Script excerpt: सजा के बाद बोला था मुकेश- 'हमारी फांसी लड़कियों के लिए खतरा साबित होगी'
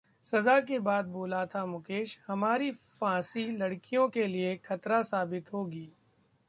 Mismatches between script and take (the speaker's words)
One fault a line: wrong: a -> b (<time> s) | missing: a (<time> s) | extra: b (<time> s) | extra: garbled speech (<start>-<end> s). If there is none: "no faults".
no faults